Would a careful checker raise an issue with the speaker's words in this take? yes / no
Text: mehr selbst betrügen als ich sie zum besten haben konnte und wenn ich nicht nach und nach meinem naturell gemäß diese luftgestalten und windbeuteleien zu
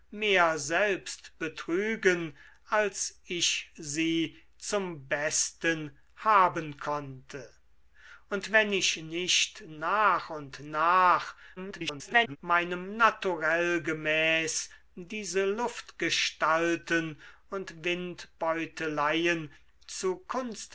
yes